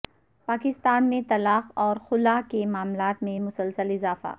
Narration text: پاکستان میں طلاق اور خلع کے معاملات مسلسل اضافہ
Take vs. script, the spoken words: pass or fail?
fail